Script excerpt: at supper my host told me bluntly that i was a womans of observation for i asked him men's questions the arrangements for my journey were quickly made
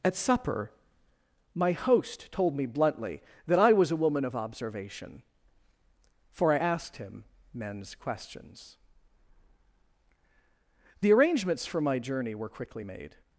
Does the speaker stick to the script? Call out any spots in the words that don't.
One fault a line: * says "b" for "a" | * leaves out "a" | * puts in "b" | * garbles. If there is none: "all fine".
* says "woman" for "womans"